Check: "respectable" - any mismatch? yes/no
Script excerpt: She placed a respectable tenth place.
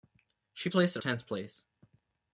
yes